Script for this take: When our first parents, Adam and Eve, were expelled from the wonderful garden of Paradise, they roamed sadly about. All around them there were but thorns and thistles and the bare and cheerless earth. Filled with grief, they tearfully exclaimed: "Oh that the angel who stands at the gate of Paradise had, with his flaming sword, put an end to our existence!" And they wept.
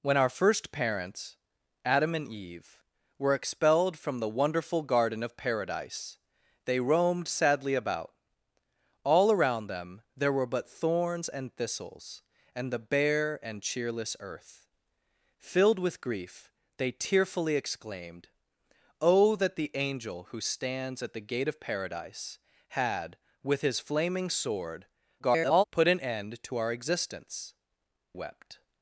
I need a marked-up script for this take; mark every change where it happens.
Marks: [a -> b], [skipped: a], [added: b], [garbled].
When our first parents, Adam and Eve, were expelled from the wonderful garden of Paradise, they roamed sadly about. All around them there were but thorns and thistles and the bare and cheerless earth. Filled with grief, they tearfully exclaimed: "Oh that the angel who stands at the gate of Paradise had, with his flaming sword, [garbled] put an end to our existence!" [skipped: And they] wept.